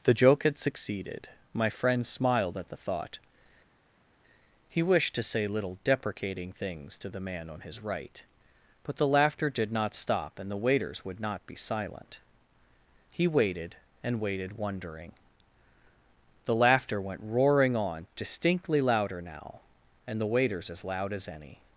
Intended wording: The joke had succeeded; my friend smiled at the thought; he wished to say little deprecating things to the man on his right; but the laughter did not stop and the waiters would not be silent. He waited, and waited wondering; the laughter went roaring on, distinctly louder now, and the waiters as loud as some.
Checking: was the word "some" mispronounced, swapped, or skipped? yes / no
yes